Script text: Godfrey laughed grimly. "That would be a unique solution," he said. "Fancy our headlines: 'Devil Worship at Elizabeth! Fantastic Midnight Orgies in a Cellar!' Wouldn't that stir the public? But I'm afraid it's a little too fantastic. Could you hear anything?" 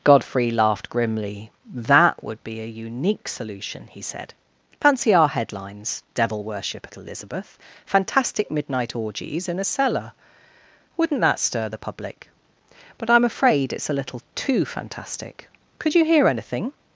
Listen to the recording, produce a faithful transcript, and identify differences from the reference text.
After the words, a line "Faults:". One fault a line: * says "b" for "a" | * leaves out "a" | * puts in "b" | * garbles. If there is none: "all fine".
Godfrey laughed grimly. "That would be a unique solution," he said. "Fancy our headlines: 'Devil Worship at Elizabeth! Fantastic Midnight Orgies in a Cellar!' Wouldn't that stir the public? But I'm afraid it's a little too fantastic. Could you hear anything?"
Faults:
all fine